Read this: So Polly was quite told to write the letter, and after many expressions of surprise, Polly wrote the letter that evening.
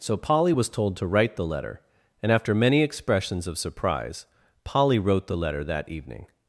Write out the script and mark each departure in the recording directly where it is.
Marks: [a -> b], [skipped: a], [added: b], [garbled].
So Polly was [skipped: quite] told to write the letter, and after many expressions of surprise, Polly wrote the letter that evening.